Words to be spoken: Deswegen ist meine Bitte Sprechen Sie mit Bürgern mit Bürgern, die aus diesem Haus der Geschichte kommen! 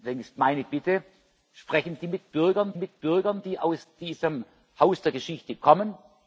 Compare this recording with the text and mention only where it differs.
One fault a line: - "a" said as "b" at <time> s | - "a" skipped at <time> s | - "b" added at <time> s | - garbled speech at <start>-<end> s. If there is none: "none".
none